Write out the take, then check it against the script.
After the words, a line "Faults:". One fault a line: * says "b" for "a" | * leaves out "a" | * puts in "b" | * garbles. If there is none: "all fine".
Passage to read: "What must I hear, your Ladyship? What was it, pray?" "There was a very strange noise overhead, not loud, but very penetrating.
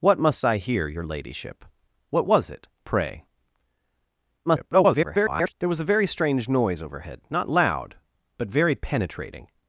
"What must I hear, your Ladyship? What was it, pray?" [garbled] "There was a very strange noise overhead, not loud, but very penetrating.
Faults:
* garbles